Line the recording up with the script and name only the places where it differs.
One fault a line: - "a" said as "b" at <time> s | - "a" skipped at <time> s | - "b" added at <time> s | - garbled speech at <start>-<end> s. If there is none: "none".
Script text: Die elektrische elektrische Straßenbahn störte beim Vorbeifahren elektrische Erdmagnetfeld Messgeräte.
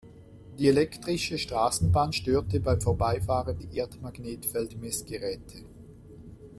- "elektrische" skipped at 1.4 s
- "elektrische" said as "die" at 3.6 s